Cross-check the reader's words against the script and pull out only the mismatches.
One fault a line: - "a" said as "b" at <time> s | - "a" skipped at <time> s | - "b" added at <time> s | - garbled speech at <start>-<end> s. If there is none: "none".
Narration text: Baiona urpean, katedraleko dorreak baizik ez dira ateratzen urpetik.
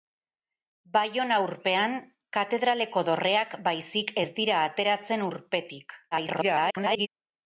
- garbled speech at 6.1-7.1 s